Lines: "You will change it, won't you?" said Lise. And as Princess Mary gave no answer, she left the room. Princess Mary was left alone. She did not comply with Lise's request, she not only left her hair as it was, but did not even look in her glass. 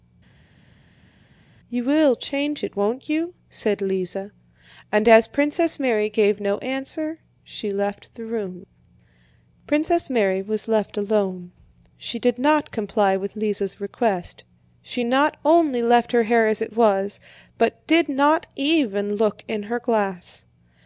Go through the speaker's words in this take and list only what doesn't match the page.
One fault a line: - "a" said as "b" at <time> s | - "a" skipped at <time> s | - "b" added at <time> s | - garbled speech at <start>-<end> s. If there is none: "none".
none